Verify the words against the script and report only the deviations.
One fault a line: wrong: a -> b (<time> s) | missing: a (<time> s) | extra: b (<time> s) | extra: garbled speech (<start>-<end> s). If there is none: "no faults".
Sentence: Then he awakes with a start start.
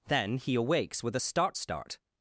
no faults